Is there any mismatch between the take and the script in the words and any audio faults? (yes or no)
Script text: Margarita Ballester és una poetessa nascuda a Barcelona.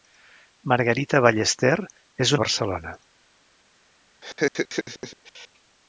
yes